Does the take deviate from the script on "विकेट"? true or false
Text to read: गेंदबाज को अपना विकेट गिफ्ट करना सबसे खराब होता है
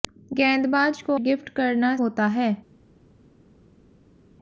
true